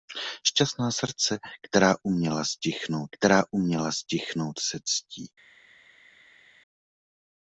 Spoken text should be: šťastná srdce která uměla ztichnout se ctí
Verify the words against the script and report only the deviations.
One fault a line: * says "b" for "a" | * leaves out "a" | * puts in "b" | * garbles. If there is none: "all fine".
* puts in "která uměla ztichnout"